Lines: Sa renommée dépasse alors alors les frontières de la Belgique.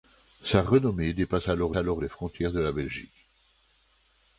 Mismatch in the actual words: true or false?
false